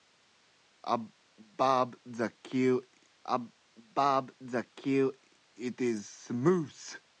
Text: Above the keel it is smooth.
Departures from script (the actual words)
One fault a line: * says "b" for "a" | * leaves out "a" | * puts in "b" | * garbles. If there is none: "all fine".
* puts in "above the keel"